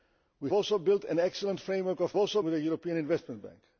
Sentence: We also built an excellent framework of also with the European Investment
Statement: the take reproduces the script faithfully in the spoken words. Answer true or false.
true